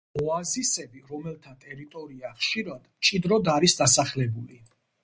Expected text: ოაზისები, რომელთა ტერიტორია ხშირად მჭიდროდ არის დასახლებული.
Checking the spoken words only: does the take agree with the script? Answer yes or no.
yes